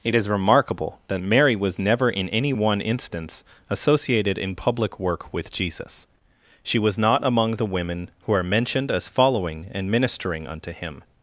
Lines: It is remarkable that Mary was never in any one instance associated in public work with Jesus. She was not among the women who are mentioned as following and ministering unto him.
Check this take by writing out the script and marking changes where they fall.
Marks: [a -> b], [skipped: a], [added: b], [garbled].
It is remarkable that Mary was never in any one instance associated in public work with Jesus. She was not among the women who are mentioned as following and ministering unto him.